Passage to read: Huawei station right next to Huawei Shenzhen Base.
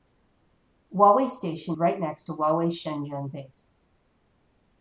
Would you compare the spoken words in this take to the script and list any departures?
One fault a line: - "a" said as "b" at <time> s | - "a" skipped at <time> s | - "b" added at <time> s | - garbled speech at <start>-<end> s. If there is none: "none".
none